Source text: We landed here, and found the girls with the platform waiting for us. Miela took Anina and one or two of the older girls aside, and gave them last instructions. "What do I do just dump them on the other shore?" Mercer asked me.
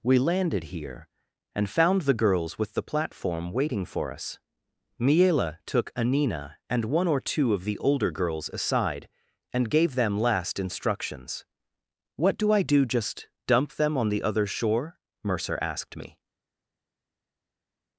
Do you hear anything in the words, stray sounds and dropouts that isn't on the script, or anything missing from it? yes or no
no